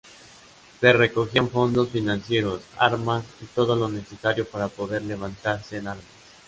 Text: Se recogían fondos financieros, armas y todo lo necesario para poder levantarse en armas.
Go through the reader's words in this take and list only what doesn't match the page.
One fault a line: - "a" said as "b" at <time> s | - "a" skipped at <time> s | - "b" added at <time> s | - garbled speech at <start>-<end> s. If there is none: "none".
none